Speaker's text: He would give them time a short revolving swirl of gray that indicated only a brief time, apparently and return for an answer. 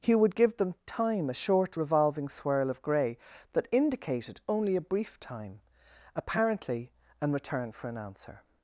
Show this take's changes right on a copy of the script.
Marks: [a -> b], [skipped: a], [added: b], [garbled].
He would give them time a short revolving swirl of gray that indicated only a brief time, apparently and return for an answer.